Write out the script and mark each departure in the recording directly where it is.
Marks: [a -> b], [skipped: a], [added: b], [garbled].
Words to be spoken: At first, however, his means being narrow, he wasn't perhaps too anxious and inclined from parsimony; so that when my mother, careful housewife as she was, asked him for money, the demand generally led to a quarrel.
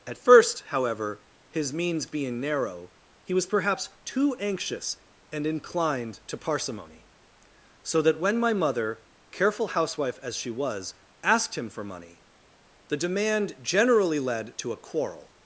At first, however, his means being narrow, he [wasn't -> was] perhaps too anxious and inclined [from -> to] parsimony; so that when my mother, careful housewife as she was, asked him for money, the demand generally led to a quarrel.